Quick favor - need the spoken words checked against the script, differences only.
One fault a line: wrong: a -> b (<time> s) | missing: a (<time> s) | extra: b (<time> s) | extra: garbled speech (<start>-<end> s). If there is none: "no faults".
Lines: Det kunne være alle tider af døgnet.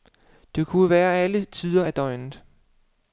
no faults